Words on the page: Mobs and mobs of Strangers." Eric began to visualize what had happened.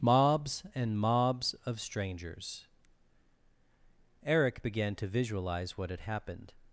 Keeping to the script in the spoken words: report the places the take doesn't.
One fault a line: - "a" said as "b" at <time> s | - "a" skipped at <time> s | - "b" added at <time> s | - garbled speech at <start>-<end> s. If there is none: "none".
none